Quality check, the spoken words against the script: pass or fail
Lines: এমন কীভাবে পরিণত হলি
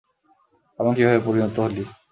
pass